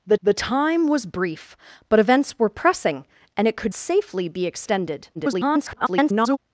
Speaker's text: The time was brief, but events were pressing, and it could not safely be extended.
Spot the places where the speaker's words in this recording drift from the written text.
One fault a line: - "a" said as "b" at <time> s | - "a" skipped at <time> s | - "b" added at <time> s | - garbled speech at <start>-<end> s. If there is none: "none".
- "the" added at 0.2 s
- "not" skipped at 3.7 s
- garbled speech at 5.1-6.4 s